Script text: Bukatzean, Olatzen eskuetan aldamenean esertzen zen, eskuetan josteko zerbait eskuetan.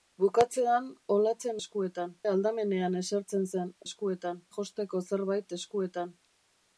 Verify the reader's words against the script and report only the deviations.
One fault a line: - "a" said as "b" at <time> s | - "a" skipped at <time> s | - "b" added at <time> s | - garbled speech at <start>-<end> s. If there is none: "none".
none